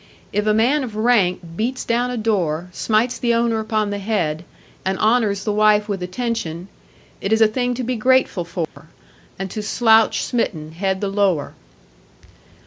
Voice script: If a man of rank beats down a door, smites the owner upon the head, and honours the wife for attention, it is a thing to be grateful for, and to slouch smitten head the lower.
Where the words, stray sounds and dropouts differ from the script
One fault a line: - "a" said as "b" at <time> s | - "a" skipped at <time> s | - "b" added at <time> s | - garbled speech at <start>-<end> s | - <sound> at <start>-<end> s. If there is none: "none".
- "for" said as "with" at 5.9 s
- dropout at 8.6-8.8 s